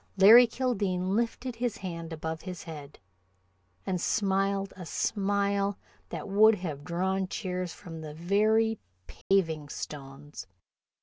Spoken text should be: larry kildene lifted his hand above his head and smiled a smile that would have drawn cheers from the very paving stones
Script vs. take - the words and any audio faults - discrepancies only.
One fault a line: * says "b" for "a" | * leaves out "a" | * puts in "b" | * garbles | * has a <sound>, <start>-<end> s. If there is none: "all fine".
* has a dropout, 9.2-9.3 s